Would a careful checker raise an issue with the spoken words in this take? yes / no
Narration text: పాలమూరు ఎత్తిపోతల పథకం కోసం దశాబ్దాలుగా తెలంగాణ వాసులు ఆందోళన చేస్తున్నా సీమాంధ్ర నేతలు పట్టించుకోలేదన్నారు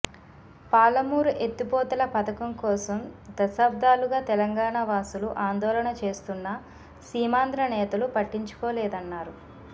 no